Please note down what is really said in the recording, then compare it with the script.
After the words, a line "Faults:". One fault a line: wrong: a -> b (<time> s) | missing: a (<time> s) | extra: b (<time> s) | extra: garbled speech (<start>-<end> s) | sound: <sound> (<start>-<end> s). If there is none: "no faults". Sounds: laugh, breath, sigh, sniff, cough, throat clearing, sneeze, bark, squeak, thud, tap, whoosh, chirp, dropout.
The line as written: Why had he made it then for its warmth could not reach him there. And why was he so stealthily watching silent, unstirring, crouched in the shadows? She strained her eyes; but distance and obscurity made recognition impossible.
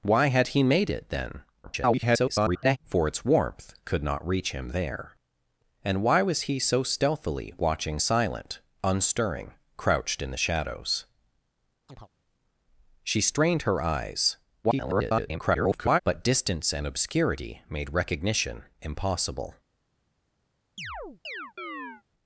Why had he made it then [garbled] for its warmth could not reach him there. And why was he so stealthily watching silent, unstirring, crouched in the shadows? She strained her eyes; [garbled] but distance and obscurity made recognition impossible.
Faults:
extra: garbled speech (1.6-2.8 s)
sound: chirp (11.9-12.1 s)
extra: garbled speech (14.6-16.0 s)
sound: chirp (20.8-22.0 s)